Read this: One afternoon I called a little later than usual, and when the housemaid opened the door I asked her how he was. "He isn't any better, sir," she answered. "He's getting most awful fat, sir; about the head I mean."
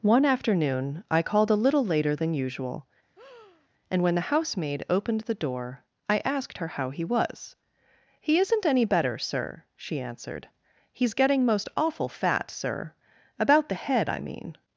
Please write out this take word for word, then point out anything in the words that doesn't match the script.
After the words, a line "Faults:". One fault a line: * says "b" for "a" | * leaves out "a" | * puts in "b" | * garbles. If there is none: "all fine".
One afternoon I called a little later than usual, and when the housemaid opened the door I asked her how he was. "He isn't any better, sir," she answered. "He's getting most awful fat, sir; about the head I mean."
Faults:
all fine